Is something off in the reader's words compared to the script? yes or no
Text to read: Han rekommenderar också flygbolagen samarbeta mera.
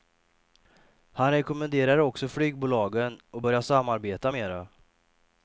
yes